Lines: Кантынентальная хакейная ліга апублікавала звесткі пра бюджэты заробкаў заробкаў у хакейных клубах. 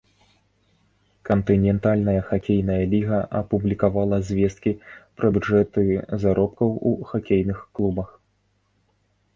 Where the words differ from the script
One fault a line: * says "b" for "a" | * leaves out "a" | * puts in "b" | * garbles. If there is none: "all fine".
* leaves out "заробкаў"